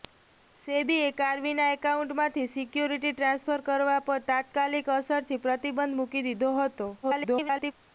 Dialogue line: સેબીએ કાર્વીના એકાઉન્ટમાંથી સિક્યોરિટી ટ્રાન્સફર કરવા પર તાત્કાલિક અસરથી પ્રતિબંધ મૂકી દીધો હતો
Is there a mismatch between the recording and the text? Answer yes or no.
yes